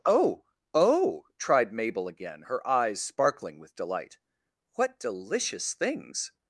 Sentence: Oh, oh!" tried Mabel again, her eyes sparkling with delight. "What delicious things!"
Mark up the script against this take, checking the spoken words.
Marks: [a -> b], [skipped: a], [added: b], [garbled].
Oh, oh!" tried Mabel again, her eyes sparkling with delight. "What delicious things!"